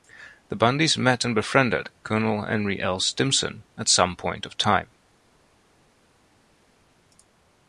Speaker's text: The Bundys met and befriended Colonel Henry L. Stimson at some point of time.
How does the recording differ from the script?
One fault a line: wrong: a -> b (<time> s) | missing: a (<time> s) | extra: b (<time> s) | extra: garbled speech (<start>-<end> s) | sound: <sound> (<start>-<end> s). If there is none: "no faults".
no faults